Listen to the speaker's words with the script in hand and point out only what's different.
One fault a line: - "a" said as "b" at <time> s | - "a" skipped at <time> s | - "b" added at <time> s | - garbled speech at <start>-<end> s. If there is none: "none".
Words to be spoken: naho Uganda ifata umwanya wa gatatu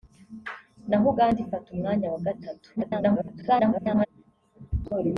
- garbled speech at 2.8-4.1 s